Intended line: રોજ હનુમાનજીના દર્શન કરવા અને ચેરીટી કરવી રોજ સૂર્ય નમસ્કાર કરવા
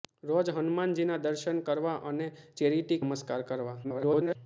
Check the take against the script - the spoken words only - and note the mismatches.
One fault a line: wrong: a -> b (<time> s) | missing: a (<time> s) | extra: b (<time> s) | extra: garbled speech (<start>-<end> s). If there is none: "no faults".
missing: કરવી રોજ સૂર્ય (3.0 s)
extra: garbled speech (3.8-4.4 s)